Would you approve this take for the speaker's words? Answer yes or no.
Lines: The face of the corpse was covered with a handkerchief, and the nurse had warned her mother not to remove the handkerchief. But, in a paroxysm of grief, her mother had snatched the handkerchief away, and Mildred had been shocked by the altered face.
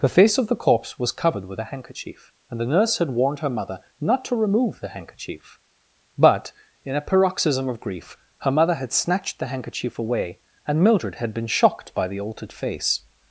yes